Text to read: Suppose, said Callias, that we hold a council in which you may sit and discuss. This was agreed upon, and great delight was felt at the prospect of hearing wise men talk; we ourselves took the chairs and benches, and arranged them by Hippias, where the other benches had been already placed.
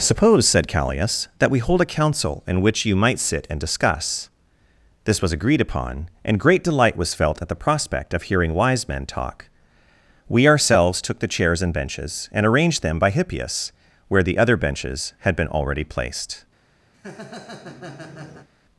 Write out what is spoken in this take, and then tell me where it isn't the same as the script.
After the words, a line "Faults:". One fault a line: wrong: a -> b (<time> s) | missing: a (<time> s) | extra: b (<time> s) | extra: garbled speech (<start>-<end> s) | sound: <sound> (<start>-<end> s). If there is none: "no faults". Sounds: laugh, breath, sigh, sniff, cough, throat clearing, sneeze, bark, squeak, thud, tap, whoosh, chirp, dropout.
Suppose, said Callias, that we hold a council in which you might sit and discuss. This was agreed upon, and great delight was felt at the prospect of hearing wise men talk; we ourselves took the chairs and benches, and arranged them by Hippias, where the other benches had been already placed.
Faults:
wrong: may -> might (3.0 s)
sound: laugh (16.9-18.5 s)